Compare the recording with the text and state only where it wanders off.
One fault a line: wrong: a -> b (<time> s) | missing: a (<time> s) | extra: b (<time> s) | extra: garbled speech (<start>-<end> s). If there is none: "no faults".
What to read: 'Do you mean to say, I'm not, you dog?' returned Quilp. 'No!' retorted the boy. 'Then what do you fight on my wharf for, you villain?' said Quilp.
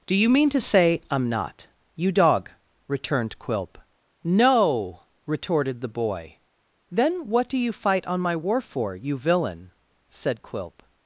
no faults